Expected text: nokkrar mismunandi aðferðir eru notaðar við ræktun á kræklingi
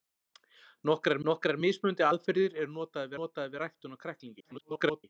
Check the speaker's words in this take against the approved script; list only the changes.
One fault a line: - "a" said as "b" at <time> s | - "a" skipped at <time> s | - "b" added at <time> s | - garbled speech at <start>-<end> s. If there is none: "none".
- "nokkrar" added at 1.3 s
- "notaðar" added at 3.2 s
- garbled speech at 4.4-5.0 s